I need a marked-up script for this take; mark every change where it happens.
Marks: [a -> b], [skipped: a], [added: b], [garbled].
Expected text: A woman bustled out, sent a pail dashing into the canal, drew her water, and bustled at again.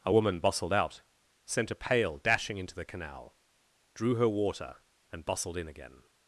A woman bustled out, sent a pail dashing into the canal, drew her water, and bustled [at -> in] again.